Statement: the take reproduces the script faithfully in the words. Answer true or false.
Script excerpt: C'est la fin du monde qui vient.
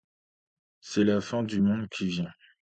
true